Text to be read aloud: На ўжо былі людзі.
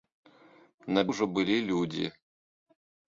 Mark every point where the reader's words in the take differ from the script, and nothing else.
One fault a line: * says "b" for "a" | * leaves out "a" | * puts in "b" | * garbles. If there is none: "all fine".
all fine